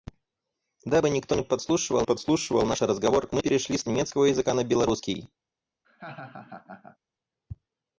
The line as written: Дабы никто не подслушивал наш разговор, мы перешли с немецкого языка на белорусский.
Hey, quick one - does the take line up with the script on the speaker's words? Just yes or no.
no